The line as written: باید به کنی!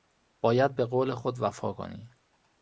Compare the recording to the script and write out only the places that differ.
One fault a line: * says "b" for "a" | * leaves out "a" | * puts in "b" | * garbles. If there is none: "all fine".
* puts in "قول خود وفا"